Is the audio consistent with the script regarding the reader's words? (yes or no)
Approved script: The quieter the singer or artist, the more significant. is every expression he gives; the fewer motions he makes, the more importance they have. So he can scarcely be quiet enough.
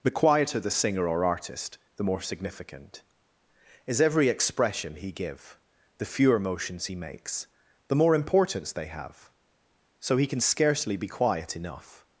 no